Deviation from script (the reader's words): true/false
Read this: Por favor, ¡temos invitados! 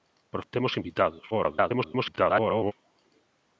true